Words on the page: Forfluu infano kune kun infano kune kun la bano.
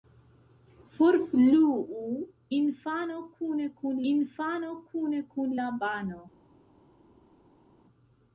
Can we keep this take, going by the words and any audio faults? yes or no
yes